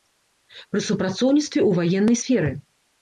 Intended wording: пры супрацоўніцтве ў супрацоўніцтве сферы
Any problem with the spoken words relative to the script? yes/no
yes